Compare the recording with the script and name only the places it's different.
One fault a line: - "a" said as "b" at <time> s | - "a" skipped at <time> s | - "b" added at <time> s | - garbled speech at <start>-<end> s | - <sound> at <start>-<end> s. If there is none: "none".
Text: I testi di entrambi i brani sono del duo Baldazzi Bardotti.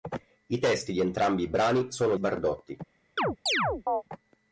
- "del duo Baldazzi" skipped at 2.1 s
- chirp at 3.2-4.0 s